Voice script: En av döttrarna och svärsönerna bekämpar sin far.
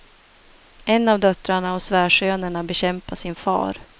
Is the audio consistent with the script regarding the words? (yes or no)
yes